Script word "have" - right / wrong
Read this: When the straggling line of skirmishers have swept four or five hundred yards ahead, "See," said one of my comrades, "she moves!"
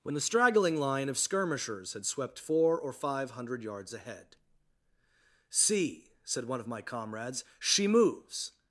wrong